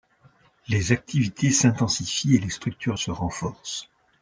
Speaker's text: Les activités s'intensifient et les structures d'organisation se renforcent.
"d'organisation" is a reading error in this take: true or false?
true